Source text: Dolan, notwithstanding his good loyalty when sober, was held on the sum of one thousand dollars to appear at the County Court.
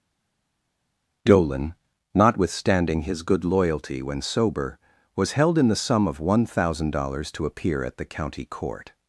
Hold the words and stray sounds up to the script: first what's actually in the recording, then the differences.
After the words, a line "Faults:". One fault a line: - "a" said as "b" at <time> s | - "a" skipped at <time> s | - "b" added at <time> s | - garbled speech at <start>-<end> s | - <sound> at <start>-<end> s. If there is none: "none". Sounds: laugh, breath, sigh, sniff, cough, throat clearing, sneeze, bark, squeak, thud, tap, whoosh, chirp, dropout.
Dolan, notwithstanding his good loyalty when sober, was held in the sum of one thousand dollars to appear at the County Court.
Faults:
- "on" said as "in" at 5.6 s